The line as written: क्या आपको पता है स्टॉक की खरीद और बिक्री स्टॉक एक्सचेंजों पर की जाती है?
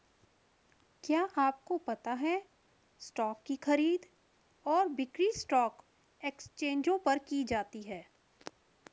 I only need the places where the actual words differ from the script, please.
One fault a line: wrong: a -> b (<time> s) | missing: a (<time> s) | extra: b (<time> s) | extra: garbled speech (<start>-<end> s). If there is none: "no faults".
no faults